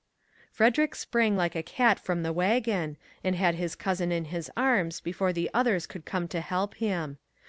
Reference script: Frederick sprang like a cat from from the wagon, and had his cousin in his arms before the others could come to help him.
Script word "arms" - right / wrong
right